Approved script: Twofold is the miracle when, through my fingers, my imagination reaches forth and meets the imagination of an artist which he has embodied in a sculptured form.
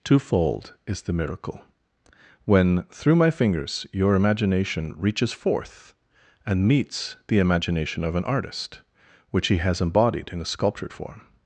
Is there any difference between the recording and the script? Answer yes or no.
yes